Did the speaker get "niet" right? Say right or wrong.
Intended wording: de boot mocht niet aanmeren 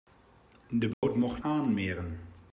wrong